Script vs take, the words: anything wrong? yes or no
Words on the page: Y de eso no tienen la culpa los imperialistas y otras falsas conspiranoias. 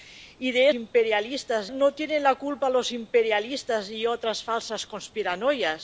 yes